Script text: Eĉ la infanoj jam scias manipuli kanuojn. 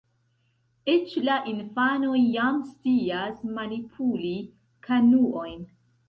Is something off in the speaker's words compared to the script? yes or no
no